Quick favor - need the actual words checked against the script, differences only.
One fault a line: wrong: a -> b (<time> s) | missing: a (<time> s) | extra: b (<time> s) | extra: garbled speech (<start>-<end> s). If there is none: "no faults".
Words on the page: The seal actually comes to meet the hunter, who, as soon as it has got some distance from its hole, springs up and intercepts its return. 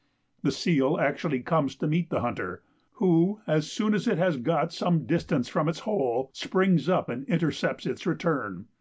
no faults